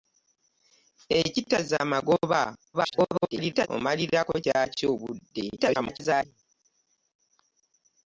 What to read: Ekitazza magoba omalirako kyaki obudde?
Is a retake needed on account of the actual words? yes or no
yes